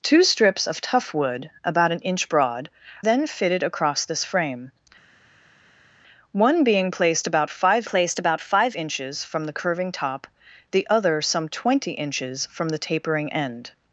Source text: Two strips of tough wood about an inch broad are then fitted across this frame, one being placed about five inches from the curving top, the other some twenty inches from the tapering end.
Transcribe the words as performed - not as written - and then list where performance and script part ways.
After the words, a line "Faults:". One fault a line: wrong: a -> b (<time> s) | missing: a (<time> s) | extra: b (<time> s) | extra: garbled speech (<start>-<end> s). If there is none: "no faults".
Two strips of tough wood about an inch broad then fitted across this frame, one being placed about five placed about five inches from the curving top, the other some twenty inches from the tapering end.
Faults:
missing: are (2.7 s)
extra: placed about five (7.9 s)